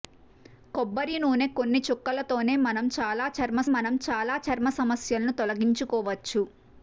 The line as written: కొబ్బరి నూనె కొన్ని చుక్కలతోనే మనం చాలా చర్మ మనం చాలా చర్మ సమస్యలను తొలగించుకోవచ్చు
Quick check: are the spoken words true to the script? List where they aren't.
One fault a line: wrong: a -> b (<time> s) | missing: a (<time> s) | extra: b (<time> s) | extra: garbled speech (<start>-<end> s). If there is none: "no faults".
no faults